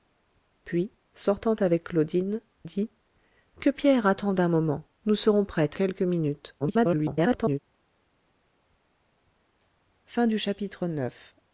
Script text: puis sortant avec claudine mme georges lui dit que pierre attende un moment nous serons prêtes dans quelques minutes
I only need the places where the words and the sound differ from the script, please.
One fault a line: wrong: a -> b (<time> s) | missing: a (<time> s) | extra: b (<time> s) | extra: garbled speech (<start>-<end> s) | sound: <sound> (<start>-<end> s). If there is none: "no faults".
missing: mme georges lui (2.4 s)
missing: dans (5.8 s)
extra: garbled speech (6.6-7.6 s)